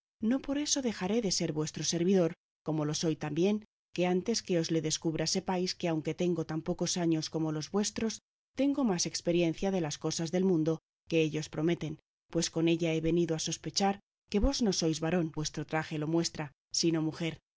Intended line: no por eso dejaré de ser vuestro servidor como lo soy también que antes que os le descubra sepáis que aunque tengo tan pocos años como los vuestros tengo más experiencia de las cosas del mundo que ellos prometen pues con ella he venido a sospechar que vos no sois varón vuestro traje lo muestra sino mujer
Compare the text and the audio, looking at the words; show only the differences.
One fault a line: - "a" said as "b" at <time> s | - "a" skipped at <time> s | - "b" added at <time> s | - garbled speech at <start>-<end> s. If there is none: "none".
none